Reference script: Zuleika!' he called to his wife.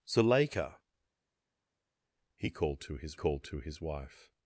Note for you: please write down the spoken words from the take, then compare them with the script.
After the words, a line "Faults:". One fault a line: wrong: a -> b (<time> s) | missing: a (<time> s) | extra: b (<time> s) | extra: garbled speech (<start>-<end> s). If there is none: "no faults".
Zuleika!' he called to his called to his wife.
Faults:
extra: called to his (3.1 s)